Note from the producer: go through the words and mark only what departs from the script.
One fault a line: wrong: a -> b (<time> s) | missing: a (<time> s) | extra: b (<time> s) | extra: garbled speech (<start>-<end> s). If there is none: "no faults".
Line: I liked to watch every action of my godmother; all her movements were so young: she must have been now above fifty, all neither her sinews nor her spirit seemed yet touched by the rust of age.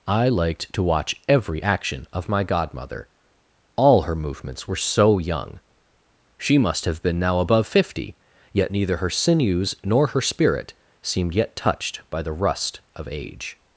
wrong: all -> yet (8.5 s)